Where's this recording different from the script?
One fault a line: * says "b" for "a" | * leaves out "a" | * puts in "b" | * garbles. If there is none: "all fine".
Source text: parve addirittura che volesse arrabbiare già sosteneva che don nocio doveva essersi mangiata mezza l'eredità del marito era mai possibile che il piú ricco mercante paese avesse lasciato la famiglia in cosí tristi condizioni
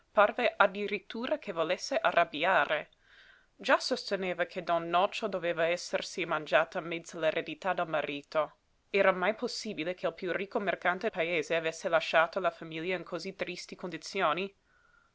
all fine